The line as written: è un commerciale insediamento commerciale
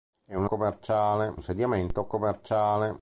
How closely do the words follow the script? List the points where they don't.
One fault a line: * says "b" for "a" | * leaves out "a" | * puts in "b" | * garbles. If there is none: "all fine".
all fine